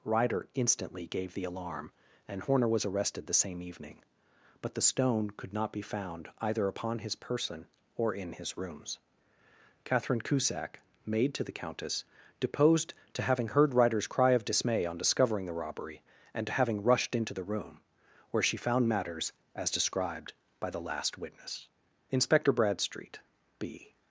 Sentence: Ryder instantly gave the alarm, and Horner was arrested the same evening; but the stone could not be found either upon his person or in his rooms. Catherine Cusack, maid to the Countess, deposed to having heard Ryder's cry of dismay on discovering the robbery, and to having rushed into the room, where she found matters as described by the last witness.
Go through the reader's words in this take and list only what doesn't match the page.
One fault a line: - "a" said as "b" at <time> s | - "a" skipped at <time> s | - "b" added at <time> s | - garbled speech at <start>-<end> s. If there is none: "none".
- "Inspector Bradstreet B" added at 22.1 s